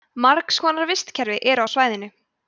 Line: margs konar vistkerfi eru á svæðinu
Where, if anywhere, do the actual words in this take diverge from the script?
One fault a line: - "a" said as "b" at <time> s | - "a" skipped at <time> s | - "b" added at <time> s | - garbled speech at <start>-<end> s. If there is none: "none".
none